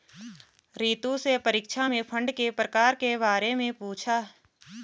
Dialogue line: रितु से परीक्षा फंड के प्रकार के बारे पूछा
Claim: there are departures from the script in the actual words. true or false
true